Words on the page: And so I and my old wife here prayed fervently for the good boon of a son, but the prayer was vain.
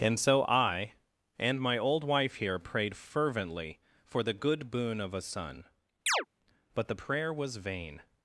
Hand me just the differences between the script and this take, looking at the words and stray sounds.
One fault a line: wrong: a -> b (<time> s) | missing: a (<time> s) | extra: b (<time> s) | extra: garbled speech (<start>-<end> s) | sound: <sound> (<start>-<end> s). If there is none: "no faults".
sound: chirp (6.1-6.3 s)